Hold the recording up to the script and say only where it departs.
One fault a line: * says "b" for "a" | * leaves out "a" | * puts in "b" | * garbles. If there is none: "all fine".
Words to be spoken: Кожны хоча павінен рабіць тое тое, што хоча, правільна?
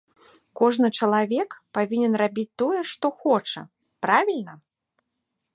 * says "чалавек" for "хоча"
* leaves out "тое"